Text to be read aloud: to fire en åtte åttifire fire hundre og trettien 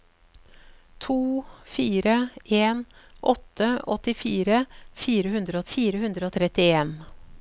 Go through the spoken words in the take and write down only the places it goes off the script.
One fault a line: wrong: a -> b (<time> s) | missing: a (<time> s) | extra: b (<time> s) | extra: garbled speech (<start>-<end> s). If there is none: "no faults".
extra: fire hundre (5.7 s)